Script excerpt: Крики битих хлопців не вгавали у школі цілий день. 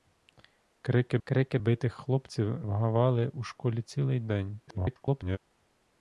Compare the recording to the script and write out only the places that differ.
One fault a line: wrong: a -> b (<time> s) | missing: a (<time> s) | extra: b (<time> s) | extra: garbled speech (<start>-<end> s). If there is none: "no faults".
extra: крики (1.2 s)
missing: не (2.6 s)
extra: garbled speech (4.7-5.4 s)